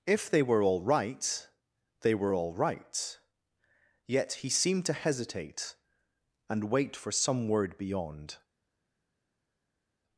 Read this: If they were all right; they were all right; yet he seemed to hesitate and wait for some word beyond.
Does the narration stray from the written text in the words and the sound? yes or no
no